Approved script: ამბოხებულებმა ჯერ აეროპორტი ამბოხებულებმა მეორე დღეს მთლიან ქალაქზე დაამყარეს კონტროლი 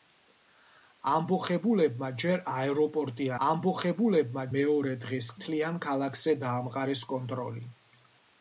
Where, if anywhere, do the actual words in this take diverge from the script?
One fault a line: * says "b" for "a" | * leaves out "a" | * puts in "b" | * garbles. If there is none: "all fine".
all fine